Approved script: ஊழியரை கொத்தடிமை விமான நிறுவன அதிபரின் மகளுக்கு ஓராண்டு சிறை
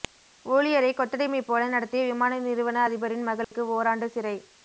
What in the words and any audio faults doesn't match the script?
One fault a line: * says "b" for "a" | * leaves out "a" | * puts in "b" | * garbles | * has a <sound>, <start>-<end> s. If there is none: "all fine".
* puts in "போல நடத்திய"
* has a dropout, 3.4-3.5 s